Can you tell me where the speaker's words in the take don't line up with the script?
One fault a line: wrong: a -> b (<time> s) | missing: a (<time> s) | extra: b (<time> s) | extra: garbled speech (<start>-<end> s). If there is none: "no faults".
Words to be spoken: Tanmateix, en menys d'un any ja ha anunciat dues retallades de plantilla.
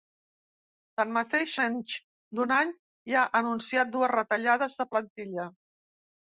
missing: en (1.5 s)